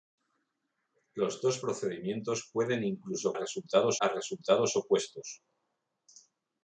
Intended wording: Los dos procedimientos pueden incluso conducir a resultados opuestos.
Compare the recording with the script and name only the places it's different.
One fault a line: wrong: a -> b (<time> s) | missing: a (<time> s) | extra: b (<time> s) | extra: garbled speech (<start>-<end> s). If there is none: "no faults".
wrong: conducir -> resultados (3.3 s)